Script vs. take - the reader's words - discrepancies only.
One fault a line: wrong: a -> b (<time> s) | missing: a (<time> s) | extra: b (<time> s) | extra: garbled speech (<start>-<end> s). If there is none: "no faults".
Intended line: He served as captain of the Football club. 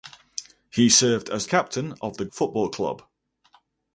no faults